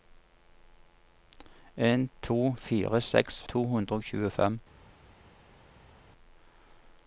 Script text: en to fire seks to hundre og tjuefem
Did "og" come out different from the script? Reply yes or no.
no